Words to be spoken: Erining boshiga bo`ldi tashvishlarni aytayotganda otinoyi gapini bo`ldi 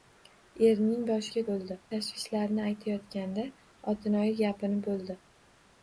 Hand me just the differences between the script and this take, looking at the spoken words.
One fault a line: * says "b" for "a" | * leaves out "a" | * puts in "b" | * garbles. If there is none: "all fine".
all fine